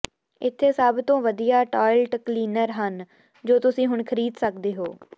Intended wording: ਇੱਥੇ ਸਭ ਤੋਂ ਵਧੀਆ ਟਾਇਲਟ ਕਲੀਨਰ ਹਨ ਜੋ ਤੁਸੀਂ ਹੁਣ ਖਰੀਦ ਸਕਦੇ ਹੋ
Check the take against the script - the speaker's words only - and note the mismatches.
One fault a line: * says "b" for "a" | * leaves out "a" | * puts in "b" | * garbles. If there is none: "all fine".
all fine